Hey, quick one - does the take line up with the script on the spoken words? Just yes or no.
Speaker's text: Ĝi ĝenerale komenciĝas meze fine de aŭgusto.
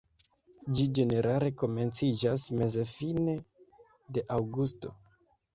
yes